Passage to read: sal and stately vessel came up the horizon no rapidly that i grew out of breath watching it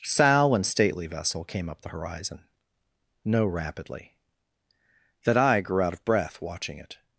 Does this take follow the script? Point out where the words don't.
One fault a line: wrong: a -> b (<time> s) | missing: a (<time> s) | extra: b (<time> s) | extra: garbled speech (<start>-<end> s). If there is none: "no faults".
no faults